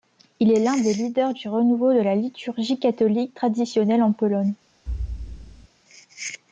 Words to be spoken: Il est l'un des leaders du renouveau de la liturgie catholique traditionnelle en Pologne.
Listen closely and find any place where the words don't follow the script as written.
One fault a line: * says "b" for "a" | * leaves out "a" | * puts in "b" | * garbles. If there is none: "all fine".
all fine